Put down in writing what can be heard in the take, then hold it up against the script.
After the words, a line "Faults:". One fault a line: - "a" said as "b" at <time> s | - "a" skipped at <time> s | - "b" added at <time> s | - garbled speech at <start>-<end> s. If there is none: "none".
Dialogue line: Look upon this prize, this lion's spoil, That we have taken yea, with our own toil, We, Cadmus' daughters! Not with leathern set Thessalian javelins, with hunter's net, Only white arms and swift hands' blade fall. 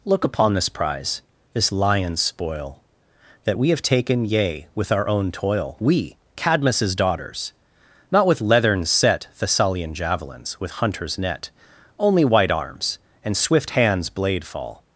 Look upon this prize, this lion's spoil, That we have taken yea, with our own toil, We, Cadmus' daughters! Not with leathern set Thessalian javelins, with hunter's net, Only white arms and swift hands' blade fall.
Faults:
none